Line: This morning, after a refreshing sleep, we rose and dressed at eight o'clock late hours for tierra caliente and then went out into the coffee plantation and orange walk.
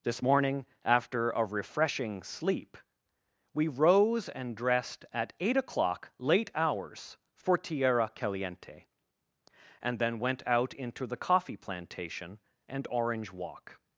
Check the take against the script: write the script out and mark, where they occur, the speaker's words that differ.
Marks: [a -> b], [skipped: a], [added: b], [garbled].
This morning, after a refreshing sleep, we rose and dressed at eight o'clock late hours for tierra caliente and then went out into the coffee plantation and orange walk.